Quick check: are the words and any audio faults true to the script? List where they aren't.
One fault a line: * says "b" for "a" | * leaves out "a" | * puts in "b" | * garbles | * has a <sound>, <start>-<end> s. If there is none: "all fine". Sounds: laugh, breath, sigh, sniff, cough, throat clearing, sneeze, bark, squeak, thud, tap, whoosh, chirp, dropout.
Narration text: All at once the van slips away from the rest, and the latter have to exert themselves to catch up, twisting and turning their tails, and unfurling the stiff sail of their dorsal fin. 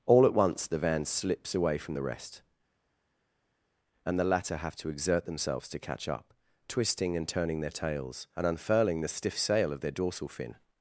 all fine